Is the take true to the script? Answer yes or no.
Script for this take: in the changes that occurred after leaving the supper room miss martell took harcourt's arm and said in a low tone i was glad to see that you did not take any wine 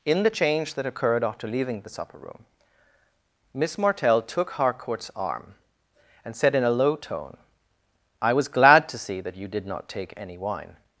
no